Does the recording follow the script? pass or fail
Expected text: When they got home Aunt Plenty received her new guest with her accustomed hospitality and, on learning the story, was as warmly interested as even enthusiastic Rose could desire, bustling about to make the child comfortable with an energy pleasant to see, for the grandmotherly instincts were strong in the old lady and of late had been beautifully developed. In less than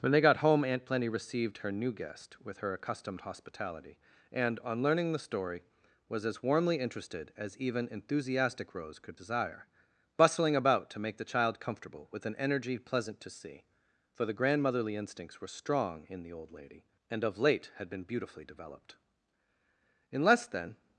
pass